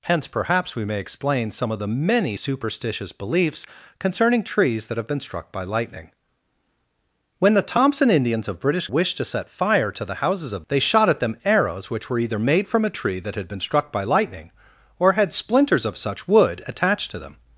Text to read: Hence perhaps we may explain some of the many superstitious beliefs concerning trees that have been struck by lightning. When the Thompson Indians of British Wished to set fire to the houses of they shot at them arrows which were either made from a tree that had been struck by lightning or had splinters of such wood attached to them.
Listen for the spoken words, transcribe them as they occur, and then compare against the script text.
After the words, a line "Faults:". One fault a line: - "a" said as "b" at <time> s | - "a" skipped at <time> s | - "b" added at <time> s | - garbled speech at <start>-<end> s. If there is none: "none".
Hence perhaps we may explain some of the many superstitious beliefs concerning trees that have been struck by lightning. When the Thompson Indians of British Wished to set fire to the houses of they shot at them arrows which were either made from a tree that had been struck by lightning or had splinters of such wood attached to them.
Faults:
none